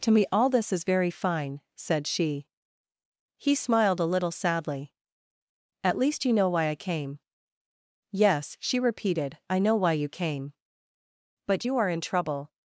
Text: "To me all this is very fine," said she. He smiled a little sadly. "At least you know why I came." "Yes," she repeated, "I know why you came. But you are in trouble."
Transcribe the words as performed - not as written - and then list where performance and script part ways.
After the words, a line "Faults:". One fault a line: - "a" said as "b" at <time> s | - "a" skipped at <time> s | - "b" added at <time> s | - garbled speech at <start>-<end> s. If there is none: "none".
"To me all this is very fine," said she. He smiled a little sadly. "At least you know why I came." "Yes," she repeated, "I know why you came. But you are in trouble."
Faults:
none